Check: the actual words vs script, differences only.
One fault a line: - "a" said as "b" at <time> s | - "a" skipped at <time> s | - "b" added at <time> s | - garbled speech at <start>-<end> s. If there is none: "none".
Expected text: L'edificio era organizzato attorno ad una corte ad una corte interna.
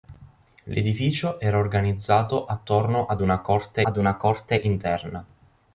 none